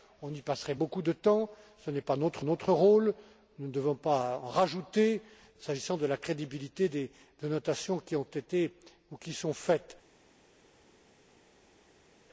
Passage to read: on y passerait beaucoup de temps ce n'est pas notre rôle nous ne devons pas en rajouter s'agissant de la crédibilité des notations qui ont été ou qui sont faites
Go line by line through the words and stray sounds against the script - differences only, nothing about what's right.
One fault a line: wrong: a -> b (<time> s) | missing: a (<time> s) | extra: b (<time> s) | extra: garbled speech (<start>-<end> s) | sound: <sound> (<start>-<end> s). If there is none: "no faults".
extra: notre (2.4 s)